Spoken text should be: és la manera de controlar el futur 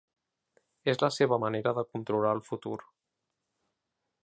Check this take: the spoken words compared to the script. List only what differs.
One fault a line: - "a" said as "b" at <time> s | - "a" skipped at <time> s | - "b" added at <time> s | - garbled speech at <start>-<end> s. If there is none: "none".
- "seva" added at 1.2 s